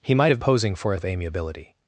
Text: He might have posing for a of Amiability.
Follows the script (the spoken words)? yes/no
yes